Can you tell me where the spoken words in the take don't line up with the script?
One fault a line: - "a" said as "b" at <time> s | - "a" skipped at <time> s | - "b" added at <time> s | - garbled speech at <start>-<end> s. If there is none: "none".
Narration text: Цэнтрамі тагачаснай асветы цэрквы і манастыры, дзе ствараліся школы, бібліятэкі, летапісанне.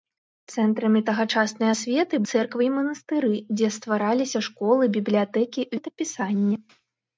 none